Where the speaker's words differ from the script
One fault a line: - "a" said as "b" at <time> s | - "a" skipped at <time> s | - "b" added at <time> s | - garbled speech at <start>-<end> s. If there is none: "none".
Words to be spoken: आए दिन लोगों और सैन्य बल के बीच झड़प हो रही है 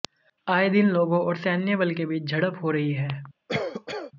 none